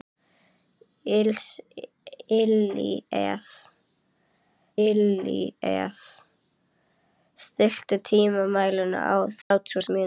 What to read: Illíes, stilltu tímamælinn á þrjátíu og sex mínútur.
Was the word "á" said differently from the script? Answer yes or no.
no